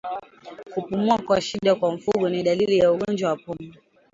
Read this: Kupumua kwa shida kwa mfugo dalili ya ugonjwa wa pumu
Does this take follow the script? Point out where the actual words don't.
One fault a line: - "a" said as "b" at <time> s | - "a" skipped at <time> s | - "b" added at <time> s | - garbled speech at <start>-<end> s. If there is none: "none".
- "ni" added at 2.3 s